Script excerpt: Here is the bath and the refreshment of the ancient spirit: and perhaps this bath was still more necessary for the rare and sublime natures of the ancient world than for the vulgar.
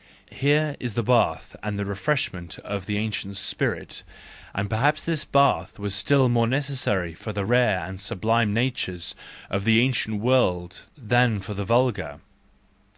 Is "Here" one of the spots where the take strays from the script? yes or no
no